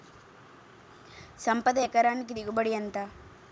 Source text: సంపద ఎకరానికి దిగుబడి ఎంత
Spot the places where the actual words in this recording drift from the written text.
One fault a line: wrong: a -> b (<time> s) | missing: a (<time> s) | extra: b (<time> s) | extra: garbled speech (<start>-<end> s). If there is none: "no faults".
no faults